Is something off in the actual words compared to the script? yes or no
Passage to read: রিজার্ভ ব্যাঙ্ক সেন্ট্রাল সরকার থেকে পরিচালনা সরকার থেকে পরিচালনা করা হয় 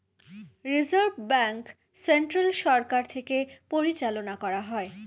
yes